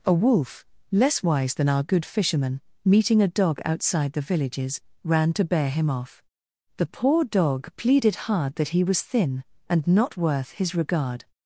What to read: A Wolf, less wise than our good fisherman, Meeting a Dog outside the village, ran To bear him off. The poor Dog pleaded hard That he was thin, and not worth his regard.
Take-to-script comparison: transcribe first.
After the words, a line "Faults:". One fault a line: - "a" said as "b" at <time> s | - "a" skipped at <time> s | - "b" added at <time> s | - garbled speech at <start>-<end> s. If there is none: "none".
A Wolf, less wise than our good fisherman, Meeting a Dog outside the villages, ran To bear him off. The poor Dog pleaded hard That he was thin, and not worth his regard.
Faults:
- "village" said as "villages" at 4.2 s